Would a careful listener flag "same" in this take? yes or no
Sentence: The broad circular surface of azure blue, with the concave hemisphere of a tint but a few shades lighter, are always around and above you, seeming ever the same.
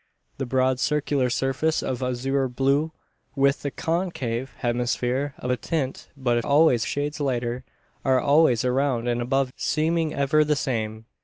no